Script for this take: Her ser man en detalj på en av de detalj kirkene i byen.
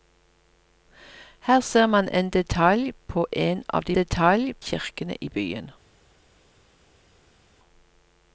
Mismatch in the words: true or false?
false